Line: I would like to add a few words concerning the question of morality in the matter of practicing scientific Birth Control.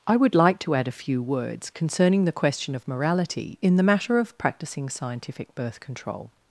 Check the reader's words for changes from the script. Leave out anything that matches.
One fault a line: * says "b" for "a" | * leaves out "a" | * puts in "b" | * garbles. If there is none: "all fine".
all fine